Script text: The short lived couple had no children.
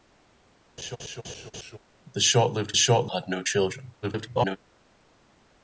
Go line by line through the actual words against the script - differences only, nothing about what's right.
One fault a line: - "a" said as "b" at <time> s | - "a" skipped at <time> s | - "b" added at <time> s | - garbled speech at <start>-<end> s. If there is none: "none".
- "couple" said as "short" at 2.7 s
- garbled speech at 4.0-4.6 s